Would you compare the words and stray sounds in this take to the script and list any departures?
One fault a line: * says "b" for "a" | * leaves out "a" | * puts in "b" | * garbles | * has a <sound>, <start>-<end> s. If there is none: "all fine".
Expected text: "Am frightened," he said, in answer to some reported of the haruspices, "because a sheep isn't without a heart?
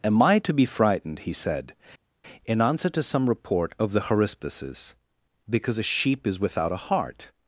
* puts in "I to be"
* says "report" for "reported"
* says "is" for "isn't"